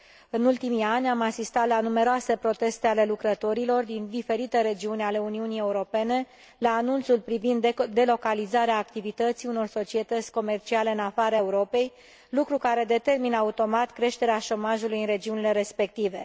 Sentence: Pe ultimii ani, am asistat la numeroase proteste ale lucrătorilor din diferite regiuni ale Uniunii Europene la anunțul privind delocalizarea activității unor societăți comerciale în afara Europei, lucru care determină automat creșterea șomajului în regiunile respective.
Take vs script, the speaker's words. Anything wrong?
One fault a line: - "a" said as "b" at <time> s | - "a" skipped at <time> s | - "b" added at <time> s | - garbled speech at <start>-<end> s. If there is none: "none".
- "Pe" said as "În" at 0.3 s